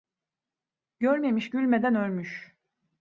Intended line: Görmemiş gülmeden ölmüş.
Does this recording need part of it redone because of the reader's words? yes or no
no